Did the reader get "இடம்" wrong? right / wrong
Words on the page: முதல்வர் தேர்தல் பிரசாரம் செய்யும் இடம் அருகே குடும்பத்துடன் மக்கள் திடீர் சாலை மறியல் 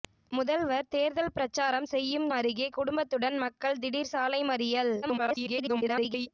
wrong